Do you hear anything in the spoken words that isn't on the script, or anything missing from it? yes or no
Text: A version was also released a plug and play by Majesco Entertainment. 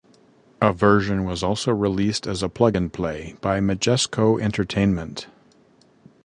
yes